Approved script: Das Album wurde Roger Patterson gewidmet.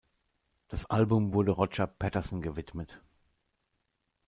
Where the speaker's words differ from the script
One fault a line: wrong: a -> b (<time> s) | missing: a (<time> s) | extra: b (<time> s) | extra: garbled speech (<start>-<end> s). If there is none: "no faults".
no faults